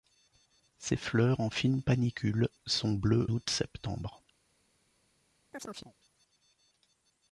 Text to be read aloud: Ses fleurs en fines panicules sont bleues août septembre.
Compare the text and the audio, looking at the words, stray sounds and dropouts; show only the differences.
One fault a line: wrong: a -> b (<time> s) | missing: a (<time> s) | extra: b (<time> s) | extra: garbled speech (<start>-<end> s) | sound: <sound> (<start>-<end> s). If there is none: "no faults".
sound: chirp (5.5-5.9 s)